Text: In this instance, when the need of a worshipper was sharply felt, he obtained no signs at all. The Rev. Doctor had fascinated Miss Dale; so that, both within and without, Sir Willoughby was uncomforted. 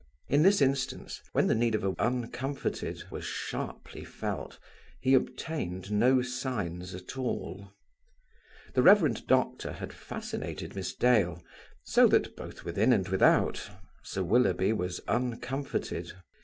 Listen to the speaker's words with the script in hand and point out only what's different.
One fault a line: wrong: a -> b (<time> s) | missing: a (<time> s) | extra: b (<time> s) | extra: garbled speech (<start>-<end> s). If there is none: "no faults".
wrong: worshipper -> uncomforted (2.0 s)